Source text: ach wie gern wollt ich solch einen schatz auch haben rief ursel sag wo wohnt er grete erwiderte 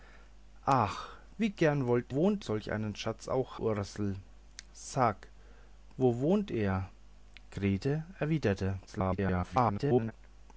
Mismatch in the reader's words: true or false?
true